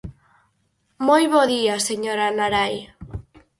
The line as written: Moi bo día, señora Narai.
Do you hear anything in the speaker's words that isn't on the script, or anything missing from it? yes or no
no